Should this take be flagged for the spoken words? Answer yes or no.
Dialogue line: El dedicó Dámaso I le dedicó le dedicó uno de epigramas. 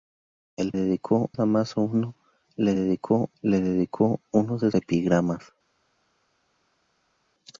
no